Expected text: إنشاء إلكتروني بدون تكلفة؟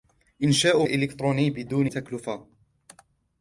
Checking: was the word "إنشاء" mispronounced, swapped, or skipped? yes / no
no